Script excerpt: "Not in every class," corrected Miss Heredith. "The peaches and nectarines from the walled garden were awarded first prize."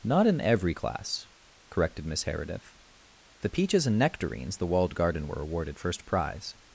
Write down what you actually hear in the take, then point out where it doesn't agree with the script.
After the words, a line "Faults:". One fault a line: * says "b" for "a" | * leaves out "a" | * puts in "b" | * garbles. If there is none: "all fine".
"Not in every class," corrected Miss Heredith. "The peaches and nectarines the walled garden were awarded first prize."
Faults:
* leaves out "from"